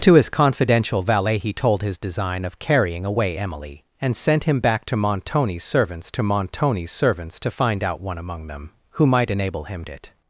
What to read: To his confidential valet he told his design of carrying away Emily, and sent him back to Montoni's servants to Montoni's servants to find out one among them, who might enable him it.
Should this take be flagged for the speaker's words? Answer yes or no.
no